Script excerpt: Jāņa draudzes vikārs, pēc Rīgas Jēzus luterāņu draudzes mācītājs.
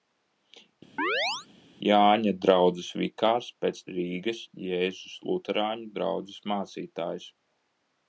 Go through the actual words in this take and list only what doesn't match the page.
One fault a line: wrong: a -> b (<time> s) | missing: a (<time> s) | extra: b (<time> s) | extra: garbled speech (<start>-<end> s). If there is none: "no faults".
no faults